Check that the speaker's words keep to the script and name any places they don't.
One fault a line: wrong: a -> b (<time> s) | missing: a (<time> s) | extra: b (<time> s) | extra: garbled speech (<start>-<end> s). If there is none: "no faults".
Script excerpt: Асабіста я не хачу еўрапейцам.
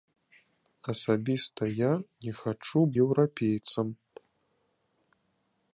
no faults